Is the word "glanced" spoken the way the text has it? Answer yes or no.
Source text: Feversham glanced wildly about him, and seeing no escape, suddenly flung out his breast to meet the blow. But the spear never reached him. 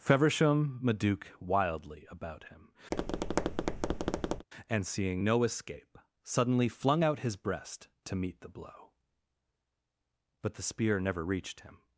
no